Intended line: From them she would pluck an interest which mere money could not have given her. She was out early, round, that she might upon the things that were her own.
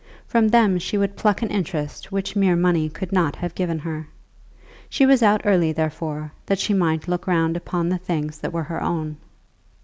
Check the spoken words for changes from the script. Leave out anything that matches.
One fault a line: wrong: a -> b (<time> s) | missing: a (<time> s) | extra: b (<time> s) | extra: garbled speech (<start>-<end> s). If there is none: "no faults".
wrong: round -> therefore (5.7 s)
extra: look round (7.1 s)